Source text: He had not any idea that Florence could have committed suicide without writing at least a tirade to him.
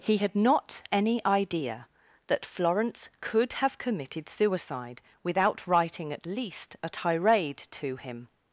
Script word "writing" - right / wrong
right